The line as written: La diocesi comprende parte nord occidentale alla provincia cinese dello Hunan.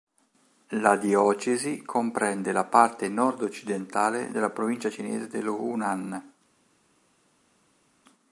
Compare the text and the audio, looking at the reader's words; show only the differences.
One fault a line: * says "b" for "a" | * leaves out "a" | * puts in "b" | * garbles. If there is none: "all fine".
* puts in "la"
* says "della" for "alla"